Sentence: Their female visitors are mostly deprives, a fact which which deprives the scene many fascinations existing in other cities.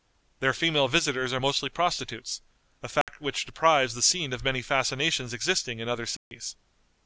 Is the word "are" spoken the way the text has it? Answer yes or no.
yes